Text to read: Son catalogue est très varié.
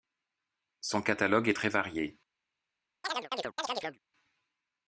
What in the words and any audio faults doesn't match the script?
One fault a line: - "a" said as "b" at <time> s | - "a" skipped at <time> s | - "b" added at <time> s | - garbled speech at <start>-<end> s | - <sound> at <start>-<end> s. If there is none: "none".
- chirp at 3.0-4.0 s